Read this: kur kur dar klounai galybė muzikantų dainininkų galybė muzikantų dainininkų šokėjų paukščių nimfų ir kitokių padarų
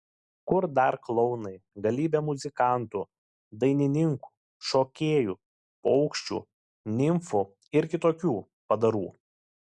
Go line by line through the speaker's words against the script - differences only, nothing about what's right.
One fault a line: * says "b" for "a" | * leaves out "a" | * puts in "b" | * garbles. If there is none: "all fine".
* leaves out "kur"
* leaves out "galybė muzikantų dainininkų"